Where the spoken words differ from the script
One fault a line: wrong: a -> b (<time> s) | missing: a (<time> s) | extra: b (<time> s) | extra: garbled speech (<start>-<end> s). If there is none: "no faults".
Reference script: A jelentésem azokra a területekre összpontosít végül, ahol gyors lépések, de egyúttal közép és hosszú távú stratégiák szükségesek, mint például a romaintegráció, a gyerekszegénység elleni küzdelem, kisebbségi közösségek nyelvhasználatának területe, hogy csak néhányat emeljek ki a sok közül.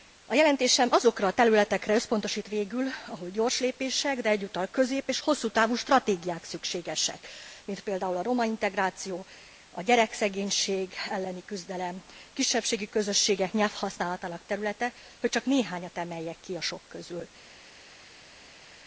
no faults